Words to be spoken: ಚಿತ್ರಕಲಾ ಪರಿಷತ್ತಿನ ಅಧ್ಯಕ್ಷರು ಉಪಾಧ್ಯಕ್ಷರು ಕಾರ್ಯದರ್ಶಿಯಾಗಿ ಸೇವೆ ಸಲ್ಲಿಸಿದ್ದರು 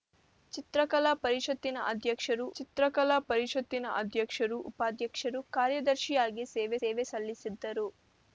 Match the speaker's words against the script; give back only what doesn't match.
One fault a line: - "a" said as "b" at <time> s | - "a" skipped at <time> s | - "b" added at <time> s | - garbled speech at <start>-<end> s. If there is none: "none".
- "ಚಿತ್ರಕಲಾ ಪರಿಷತ್ತಿನ ಅಧ್ಯಕ್ಷರು" added at 2.6 s
- "ಸೇವೆ" added at 6.8 s